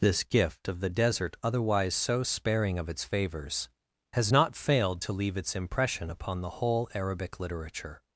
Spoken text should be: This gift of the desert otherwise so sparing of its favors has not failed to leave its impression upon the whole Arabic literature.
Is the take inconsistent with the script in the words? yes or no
no